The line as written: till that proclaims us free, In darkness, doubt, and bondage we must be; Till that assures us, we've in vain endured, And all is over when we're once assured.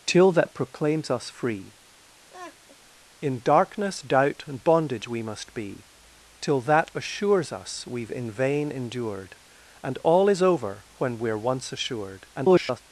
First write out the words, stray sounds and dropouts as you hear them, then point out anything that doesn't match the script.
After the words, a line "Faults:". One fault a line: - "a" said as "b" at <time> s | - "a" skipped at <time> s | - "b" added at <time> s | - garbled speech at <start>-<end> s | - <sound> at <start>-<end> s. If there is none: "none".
till that proclaims us free, In darkness, doubt, and bondage we must be; Till that assures us, we've in vain endured, And all is over when we're once assured. [garbled]
Faults:
- laugh at 2.3-2.8 s
- garbled speech at 12.3-12.8 s